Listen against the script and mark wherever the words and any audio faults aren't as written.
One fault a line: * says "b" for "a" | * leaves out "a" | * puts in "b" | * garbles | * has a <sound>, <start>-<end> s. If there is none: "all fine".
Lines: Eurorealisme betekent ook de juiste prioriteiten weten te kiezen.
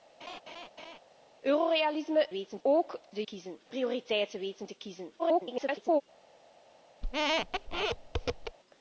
* has a laugh, 0.2-1.0 s
* says "weten" for "betekent"
* says "kiezen" for "juiste"
* garbles
* has a squeak, 7.0-8.6 s